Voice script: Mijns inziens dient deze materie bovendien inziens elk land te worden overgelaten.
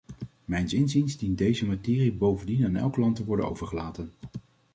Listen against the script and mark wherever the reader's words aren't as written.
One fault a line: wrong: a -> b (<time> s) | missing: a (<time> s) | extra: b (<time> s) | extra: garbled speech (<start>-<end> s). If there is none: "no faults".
wrong: inziens -> aan (2.7 s)